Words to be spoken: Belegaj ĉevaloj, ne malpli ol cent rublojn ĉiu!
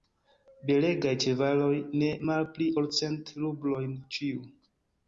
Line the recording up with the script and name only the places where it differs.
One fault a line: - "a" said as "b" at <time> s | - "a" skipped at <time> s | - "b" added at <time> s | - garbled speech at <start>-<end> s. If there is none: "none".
none